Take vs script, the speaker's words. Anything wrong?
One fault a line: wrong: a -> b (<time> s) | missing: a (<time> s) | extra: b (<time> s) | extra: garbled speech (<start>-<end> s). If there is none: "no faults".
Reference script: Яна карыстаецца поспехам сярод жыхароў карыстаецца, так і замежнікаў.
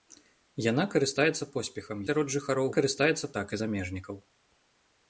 no faults